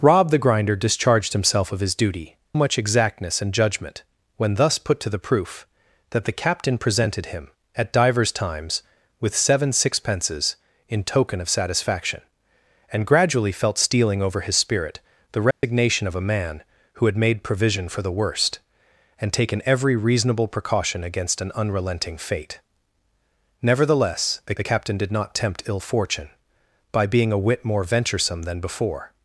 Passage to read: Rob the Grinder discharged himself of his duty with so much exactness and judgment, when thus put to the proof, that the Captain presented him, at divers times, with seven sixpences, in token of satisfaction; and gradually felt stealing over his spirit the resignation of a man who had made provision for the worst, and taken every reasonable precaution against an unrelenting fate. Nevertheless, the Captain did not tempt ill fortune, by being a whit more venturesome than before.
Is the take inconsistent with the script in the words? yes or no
yes